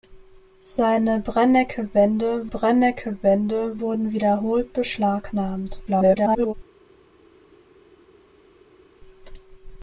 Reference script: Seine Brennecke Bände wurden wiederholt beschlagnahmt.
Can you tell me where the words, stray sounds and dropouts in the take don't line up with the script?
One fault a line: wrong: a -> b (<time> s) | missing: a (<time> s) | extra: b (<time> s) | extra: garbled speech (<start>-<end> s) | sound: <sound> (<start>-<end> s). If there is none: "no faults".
extra: Brennecke Bände (2.5 s)
extra: garbled speech (5.9-6.5 s)